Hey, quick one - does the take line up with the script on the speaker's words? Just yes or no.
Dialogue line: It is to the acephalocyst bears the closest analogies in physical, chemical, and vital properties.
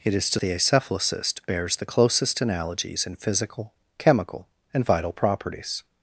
yes